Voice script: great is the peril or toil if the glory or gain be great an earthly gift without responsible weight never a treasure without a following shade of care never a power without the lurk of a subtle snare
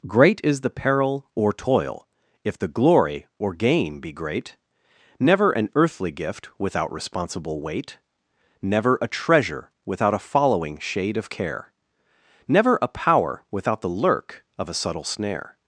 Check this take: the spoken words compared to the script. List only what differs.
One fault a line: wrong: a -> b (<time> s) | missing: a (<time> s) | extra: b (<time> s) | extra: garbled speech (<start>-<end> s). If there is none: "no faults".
extra: never (5.2 s)